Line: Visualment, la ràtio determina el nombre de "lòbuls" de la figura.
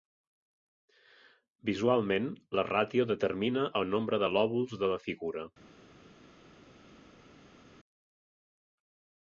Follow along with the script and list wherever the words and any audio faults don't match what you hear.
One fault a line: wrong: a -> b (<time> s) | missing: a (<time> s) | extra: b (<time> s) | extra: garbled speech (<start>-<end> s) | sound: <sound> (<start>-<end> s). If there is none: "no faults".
no faults